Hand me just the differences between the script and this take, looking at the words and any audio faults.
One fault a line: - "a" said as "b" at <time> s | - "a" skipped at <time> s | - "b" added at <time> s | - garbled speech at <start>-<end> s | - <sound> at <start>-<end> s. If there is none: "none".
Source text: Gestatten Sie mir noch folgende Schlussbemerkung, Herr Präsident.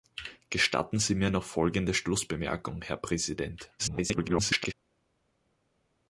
- garbled speech at 3.8-4.7 s